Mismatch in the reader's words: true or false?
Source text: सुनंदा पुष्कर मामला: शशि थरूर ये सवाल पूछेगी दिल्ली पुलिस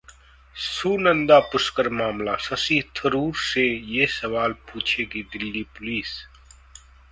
true